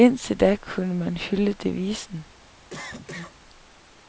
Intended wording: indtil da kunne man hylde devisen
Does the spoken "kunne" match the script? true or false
true